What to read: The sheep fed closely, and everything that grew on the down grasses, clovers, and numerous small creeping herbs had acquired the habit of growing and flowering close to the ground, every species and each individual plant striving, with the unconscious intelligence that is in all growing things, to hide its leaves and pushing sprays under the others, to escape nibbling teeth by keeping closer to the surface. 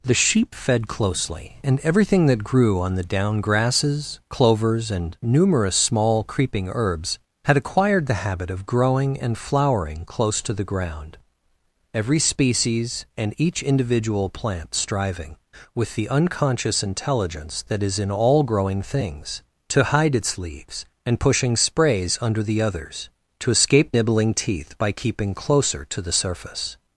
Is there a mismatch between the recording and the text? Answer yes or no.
no